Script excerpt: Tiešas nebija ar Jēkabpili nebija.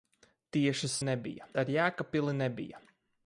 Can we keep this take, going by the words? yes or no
yes